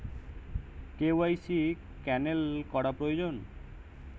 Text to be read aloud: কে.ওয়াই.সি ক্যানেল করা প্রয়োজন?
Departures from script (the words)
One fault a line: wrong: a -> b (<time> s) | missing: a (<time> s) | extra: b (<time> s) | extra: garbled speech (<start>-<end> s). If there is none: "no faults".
no faults